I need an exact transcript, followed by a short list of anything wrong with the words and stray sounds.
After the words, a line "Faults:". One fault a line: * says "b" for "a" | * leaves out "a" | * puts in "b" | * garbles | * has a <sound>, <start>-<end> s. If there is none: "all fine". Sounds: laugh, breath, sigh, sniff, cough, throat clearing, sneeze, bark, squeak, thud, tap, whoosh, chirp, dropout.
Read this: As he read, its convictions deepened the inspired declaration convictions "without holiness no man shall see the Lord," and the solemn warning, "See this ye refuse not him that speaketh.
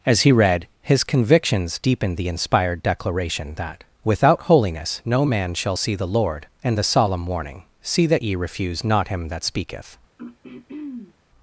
As he read, his convictions deepened the inspired declaration that "without holiness no man shall see the Lord," and the solemn warning, "See that ye refuse not him that speaketh.
Faults:
* says "his" for "its"
* says "that" for "convictions"
* says "that" for "this"
* has a throat clearing, 10.2-11.1 s